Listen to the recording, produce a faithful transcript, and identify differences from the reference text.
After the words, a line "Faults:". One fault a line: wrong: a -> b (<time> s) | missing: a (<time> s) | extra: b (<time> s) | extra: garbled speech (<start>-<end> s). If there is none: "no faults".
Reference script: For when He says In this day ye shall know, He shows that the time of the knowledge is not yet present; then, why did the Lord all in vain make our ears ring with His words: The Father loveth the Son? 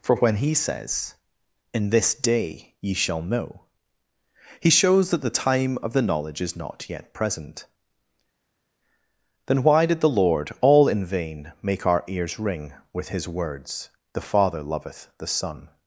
For when He says In this day ye shall know, He shows that the time of the knowledge is not yet present; then, why did the Lord all in vain make our ears ring with His words: The Father loveth the Son?
Faults:
no faults